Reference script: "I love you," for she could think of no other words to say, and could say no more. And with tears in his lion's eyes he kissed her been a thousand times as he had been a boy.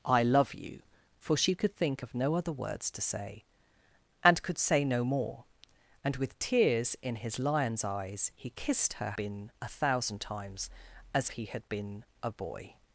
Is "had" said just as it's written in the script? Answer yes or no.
yes